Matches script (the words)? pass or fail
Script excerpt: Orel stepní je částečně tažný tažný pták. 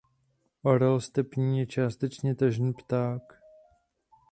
fail